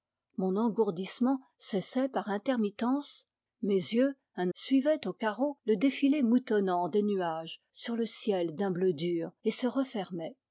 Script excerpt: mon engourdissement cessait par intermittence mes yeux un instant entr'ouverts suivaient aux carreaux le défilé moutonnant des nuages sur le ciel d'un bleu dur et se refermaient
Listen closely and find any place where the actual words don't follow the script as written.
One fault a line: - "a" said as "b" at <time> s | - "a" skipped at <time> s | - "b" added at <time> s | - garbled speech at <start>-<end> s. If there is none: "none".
- "instant entr'ouverts" skipped at 4.5 s